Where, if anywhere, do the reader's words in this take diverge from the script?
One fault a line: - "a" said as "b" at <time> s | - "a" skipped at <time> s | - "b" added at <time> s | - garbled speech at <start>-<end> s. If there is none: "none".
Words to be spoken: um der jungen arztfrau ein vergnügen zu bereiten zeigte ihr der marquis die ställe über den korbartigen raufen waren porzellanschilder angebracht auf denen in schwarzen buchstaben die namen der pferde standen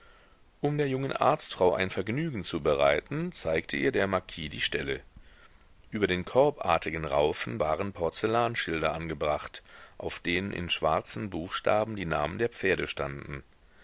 none